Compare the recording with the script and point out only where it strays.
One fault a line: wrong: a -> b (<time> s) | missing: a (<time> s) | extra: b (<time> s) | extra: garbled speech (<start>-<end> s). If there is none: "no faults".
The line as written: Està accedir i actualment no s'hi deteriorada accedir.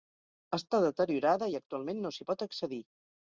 wrong: accedir -> deteriorada (0.8 s)
wrong: deteriorada -> pot (2.3 s)